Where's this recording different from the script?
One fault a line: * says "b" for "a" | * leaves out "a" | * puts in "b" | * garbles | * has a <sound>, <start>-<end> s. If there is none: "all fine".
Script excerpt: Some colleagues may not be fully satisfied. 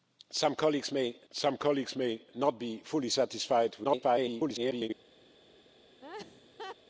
* puts in "some colleagues may"
* garbles
* has a laugh, 6.0-6.8 s